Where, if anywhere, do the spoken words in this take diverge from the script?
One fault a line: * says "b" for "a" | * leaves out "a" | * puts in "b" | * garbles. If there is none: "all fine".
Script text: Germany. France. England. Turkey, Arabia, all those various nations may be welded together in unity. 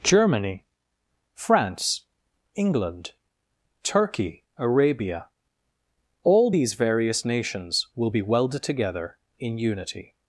* says "these" for "those"
* says "will" for "may"